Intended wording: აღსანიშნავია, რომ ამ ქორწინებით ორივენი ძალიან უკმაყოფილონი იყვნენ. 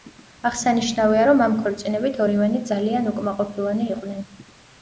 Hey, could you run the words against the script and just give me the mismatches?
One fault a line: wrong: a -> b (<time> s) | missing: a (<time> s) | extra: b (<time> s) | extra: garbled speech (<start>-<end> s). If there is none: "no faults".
no faults